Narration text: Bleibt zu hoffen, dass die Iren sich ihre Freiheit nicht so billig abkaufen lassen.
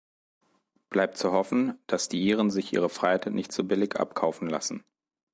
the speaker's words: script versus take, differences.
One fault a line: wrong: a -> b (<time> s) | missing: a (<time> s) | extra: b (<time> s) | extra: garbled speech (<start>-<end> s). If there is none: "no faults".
no faults